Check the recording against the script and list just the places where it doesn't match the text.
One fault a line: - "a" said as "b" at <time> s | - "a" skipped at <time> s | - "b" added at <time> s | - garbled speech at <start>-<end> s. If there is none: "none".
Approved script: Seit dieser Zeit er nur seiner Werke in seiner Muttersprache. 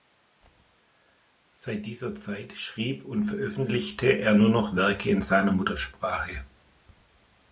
- "schrieb und veröffentlichte" added at 2.6 s
- "seiner" said as "noch" at 4.5 s